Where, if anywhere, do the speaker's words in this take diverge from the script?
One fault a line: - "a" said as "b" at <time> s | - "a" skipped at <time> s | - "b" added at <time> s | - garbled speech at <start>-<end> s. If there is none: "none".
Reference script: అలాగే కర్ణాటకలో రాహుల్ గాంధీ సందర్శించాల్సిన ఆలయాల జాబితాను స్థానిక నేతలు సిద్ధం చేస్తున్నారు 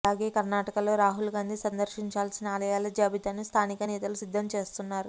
none